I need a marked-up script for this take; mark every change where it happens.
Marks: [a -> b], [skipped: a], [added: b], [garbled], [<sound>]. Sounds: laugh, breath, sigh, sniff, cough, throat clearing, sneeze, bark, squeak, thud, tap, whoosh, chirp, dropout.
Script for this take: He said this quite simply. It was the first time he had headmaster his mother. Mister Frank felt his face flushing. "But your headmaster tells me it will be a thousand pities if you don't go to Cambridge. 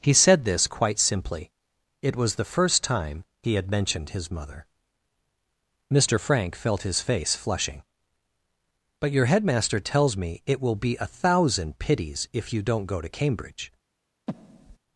He said this quite simply. It was the first time he had [headmaster -> mentioned] his mother. Mister Frank felt his face flushing. "But your headmaster tells me it will be a thousand pities if you don't go to Cambridge. [breath]